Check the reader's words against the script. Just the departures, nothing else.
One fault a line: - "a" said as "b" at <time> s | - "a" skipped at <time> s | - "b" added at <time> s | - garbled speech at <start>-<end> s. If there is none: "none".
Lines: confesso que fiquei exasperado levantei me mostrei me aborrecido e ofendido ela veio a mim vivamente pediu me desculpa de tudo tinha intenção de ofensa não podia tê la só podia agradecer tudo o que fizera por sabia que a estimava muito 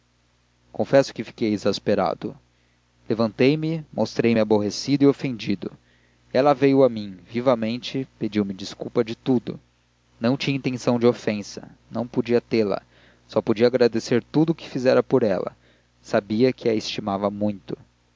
- "não" added at 10.2 s
- "ela" added at 15.2 s